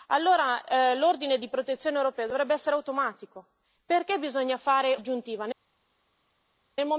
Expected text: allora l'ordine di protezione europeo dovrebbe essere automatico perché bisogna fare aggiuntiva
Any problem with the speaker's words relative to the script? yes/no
no